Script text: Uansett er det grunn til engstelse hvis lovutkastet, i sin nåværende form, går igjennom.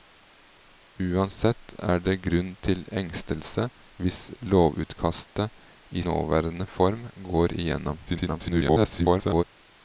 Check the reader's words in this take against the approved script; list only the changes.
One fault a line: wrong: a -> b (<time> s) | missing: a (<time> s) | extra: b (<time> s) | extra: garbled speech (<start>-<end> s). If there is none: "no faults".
missing: sin (6.0 s)
extra: garbled speech (8.1-9.4 s)